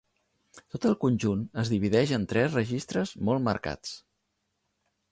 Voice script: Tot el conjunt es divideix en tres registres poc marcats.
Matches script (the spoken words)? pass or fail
fail